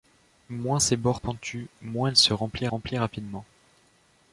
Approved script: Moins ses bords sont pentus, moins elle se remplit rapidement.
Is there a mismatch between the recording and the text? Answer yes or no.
yes